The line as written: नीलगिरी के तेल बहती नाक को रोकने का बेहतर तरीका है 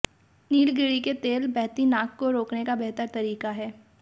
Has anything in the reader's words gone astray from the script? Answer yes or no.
no